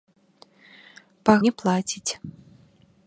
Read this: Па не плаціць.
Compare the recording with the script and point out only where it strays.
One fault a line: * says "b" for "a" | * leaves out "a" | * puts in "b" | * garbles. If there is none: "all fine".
all fine